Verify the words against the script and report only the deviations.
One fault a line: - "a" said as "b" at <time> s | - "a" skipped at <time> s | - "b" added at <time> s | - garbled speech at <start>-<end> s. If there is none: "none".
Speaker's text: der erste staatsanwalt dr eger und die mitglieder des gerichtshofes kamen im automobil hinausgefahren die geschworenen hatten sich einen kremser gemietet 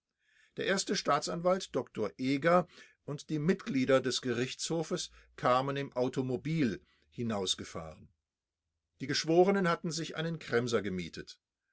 none